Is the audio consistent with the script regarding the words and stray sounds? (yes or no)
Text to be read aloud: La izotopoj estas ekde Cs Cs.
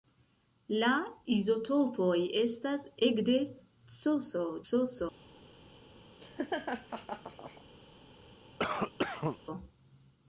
no